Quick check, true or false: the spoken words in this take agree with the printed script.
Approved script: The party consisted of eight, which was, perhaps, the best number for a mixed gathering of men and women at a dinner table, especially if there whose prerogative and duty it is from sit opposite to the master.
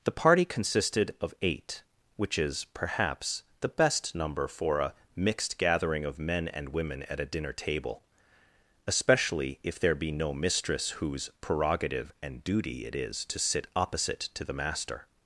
false